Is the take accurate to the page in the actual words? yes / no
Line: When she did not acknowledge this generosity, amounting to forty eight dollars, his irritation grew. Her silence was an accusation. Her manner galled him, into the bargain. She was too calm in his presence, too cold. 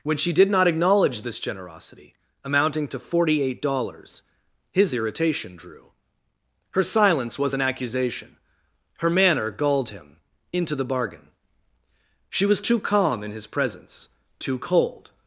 no